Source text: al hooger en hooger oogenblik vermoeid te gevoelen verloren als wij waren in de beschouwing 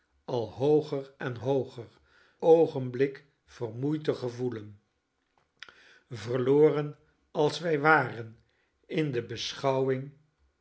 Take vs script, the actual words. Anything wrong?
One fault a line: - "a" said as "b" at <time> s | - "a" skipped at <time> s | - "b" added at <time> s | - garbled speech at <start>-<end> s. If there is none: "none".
none